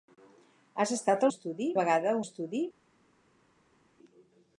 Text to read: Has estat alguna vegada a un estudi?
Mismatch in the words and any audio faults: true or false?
true